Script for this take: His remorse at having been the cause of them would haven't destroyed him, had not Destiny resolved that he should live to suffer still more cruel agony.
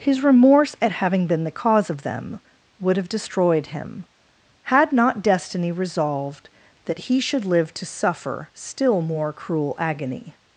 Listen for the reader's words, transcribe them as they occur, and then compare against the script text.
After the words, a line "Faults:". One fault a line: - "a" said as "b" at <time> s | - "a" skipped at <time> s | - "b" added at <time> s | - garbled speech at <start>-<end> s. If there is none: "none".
His remorse at having been the cause of them would have destroyed him, had not Destiny resolved that he should live to suffer still more cruel agony.
Faults:
- "haven't" said as "have" at 3.0 s